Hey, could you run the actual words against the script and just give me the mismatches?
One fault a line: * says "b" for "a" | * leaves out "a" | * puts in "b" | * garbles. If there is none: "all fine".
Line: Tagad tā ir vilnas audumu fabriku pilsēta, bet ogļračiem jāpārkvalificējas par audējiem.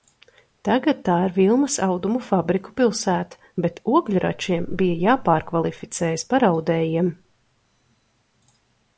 * puts in "bija"